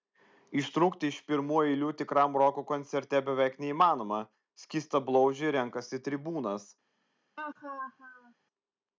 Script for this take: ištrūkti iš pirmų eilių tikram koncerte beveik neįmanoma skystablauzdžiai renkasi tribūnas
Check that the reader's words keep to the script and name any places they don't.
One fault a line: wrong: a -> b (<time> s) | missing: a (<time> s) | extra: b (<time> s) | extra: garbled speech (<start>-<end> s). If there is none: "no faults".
extra: roko (2.4 s)